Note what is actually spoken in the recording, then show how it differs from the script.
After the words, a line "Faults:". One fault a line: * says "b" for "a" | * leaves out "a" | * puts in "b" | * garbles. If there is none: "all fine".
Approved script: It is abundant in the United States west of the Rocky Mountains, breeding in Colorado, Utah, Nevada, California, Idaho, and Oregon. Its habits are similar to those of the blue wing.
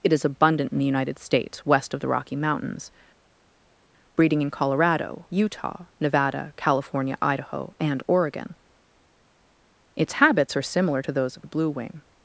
It is abundant in the United States west of the Rocky Mountains, breeding in Colorado, Utah, Nevada, California, Idaho, and Oregon. Its habits are similar to those of the blue wing.
Faults:
all fine